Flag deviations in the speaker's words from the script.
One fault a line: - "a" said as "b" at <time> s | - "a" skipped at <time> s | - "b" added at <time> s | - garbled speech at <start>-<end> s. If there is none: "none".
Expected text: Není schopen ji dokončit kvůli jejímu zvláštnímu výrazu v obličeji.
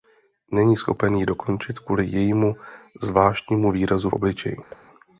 - "v" skipped at 4.1 s